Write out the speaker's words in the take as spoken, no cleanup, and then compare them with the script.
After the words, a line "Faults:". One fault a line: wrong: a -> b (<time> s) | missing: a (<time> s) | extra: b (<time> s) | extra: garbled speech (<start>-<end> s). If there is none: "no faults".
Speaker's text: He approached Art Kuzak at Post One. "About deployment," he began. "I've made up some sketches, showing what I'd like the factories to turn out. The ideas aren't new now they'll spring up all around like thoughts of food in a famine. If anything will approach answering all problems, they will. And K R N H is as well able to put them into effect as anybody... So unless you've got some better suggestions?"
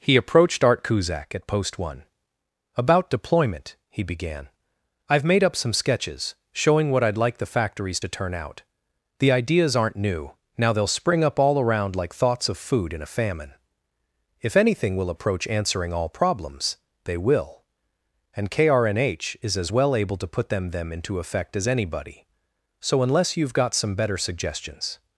He approached Art Kuzak at Post One. "About deployment," he began. "I've made up some sketches, showing what I'd like the factories to turn out. The ideas aren't new now they'll spring up all around like thoughts of food in a famine. If anything will approach answering all problems, they will. And K R N H is as well able to put them them into effect as anybody... So unless you've got some better suggestions?"
Faults:
extra: them (20.7 s)